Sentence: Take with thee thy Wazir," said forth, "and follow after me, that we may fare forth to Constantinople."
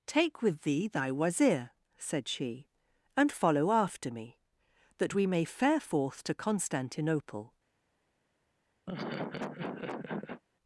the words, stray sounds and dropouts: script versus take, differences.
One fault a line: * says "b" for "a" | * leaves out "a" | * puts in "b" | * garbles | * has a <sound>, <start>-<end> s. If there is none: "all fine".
* says "she" for "forth"
* has a laugh, 8.9-10.4 s